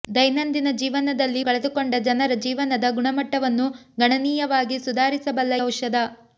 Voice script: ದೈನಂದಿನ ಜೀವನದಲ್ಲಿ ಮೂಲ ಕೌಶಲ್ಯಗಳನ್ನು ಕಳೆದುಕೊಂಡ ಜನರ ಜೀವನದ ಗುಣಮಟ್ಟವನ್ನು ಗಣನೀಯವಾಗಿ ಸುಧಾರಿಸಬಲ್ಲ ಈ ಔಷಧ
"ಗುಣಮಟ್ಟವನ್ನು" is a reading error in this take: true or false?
false